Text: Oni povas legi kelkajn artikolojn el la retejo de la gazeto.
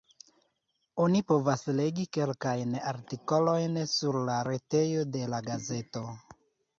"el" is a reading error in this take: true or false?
true